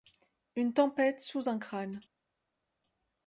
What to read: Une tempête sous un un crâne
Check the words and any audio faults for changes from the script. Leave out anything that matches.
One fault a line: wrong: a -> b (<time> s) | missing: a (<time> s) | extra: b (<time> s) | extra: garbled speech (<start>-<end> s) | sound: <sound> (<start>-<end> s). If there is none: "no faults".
missing: un (1.6 s)